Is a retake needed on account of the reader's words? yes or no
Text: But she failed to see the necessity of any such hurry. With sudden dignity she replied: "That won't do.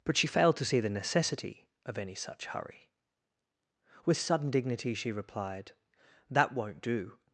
no